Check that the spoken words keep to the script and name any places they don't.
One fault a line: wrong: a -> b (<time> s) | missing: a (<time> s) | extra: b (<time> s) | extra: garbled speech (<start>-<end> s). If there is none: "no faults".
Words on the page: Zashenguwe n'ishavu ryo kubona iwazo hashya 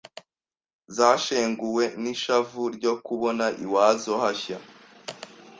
no faults